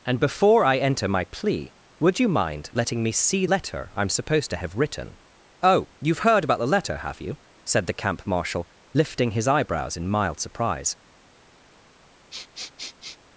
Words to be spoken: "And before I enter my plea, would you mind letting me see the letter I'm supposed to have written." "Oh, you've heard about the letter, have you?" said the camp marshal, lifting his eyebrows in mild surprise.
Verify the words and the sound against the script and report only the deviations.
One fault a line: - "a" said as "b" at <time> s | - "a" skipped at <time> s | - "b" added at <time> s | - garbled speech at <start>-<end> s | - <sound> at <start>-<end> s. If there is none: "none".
- "the" skipped at 3.5 s
- sniff at 12.3-13.2 s